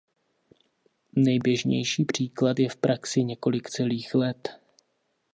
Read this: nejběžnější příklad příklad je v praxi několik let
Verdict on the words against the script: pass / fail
fail